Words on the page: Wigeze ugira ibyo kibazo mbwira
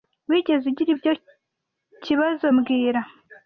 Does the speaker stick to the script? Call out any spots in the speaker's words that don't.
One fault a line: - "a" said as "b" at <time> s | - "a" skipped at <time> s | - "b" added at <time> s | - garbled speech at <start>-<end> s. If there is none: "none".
none